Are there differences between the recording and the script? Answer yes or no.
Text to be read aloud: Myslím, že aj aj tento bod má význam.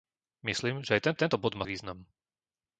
no